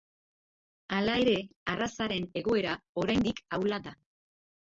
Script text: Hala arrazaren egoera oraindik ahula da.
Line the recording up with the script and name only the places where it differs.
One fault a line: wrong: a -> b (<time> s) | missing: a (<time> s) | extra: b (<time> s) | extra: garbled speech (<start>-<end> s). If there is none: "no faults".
extra: ere (1.2 s)